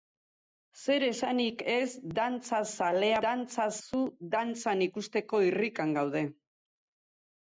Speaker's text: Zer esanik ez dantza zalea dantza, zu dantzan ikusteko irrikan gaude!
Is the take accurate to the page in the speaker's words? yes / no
yes